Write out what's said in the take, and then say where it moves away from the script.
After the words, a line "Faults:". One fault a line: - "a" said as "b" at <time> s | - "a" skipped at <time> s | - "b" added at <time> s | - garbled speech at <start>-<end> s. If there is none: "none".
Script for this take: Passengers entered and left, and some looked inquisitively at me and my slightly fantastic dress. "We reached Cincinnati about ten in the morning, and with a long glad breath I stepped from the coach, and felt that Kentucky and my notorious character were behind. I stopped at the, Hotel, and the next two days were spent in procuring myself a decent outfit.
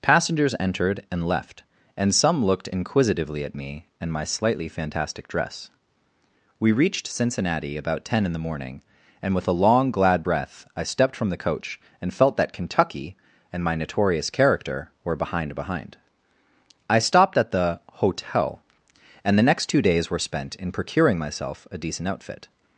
Passengers entered and left, and some looked inquisitively at me and my slightly fantastic dress. "We reached Cincinnati about ten in the morning, and with a long glad breath I stepped from the coach, and felt that Kentucky and my notorious character were behind behind. I stopped at the, Hotel, and the next two days were spent in procuring myself a decent outfit.
Faults:
- "behind" added at 15.5 s